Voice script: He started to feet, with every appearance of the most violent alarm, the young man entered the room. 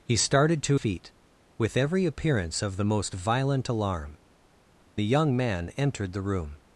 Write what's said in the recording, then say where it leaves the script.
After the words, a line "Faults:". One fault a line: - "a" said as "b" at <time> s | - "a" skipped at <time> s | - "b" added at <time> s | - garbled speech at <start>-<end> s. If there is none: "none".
He started to feet, with every appearance of the most violent alarm, the young man entered the room.
Faults:
none